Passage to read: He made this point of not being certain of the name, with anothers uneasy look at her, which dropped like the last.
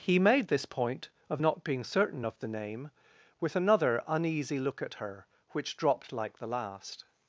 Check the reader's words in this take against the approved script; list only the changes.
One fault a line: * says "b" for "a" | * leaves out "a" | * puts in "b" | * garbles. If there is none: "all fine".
* says "another" for "anothers"